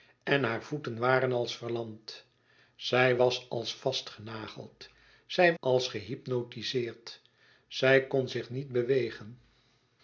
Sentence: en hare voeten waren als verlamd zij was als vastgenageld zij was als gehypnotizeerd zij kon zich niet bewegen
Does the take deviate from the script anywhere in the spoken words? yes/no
yes